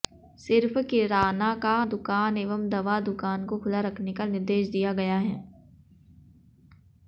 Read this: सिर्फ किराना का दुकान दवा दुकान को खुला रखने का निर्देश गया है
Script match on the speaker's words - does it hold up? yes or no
no